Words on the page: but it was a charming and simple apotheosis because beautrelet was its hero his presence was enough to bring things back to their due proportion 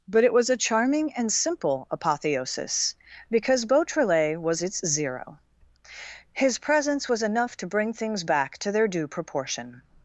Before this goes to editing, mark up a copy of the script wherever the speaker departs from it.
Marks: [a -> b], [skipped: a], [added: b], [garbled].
but it was a charming and simple apotheosis because beautrelet was its [hero -> zero] his presence was enough to bring things back to their due proportion